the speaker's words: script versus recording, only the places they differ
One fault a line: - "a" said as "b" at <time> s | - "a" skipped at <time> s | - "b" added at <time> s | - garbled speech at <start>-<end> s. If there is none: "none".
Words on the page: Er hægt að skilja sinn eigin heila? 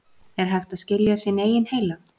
none